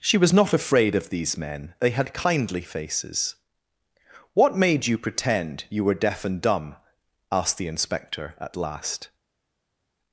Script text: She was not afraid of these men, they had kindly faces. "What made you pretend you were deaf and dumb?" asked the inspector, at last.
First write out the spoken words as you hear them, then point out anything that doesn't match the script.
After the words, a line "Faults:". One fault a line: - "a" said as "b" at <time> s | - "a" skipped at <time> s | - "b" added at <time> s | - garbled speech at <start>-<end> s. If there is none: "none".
She was not afraid of these men, they had kindly faces. "What made you pretend you were deaf and dumb?" asked the inspector, at last.
Faults:
none